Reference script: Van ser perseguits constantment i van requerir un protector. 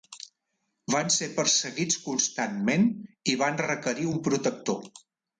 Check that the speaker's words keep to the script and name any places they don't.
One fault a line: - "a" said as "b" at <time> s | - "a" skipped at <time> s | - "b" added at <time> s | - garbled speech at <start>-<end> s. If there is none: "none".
none